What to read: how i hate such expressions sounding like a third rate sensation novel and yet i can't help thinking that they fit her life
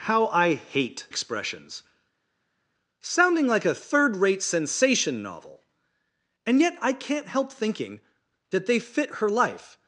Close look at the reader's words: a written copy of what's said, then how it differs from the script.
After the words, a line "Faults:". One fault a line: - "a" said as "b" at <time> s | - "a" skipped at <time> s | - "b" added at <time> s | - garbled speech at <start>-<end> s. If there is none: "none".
how i hate expressions sounding like a third rate sensation novel and yet i can't help thinking that they fit her life
Faults:
- "such" skipped at 1.1 s